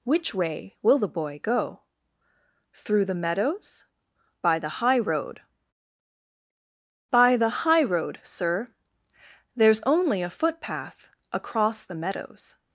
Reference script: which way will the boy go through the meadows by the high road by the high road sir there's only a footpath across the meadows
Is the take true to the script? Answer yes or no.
yes